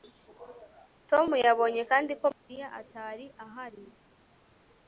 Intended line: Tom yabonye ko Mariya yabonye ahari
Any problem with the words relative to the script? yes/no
yes